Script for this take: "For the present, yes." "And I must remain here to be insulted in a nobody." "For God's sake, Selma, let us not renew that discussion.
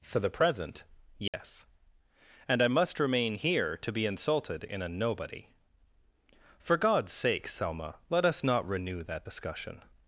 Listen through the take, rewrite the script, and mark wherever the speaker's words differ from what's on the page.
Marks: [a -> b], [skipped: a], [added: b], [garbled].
"For the present, yes." "And I must remain here to be insulted in a nobody." "For God's sake, Selma, let us not renew that discussion.